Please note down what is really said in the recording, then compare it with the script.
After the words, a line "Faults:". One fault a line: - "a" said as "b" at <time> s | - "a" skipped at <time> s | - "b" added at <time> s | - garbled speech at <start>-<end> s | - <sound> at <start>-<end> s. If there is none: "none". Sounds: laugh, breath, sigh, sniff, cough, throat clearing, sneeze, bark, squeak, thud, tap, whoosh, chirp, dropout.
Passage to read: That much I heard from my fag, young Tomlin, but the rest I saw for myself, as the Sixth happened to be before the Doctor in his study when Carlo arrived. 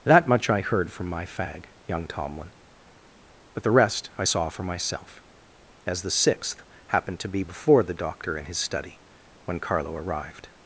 That much I heard from my fag, young Tomlin, but the rest I saw for myself, as the Sixth happened to be before the Doctor in his study when Carlo arrived.
Faults:
none